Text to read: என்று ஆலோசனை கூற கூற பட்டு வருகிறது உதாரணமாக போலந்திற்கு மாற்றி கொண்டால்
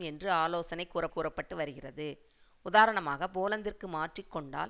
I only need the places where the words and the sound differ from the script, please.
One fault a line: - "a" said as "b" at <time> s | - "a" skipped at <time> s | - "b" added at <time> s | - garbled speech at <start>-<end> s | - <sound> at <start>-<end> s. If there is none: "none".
none